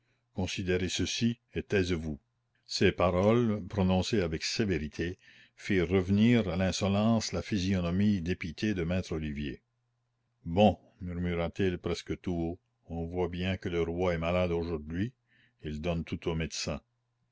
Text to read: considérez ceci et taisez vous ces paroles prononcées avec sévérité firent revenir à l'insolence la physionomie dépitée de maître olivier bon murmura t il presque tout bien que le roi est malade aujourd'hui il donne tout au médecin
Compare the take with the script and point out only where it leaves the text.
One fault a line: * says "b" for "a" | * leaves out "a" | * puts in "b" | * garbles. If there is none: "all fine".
* puts in "haut on voit"